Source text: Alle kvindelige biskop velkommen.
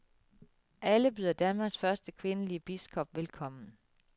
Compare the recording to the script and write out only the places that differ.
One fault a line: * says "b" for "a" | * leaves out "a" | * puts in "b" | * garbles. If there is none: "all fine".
* puts in "byder Danmarks første"